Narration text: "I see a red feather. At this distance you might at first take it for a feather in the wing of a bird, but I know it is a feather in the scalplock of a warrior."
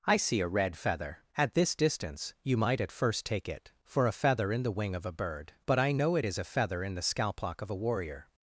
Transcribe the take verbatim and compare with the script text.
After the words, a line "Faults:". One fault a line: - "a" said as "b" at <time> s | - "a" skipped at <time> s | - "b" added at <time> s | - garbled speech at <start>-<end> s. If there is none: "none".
"I see a red feather. At this distance you might at first take it for a feather in the wing of a bird, but I know it is a feather in the scalplock of a warrior."
Faults:
none